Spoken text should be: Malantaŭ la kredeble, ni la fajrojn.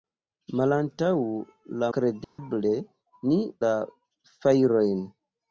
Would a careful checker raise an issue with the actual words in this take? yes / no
no